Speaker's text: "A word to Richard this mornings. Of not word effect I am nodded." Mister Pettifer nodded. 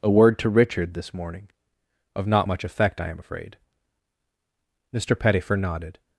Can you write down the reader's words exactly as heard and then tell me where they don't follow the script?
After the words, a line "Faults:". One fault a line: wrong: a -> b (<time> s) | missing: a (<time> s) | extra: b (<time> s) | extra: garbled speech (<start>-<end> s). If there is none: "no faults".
"A word to Richard this morning. Of not much effect I am afraid." Mister Pettifer nodded.
Faults:
wrong: mornings -> morning (1.1 s)
wrong: word -> much (2.5 s)
wrong: nodded -> afraid (3.2 s)